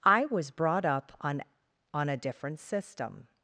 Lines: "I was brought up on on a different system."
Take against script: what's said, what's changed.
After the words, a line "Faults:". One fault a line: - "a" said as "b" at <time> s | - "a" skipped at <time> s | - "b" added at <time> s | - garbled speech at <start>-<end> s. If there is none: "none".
"I was brought up on on a different system."
Faults:
none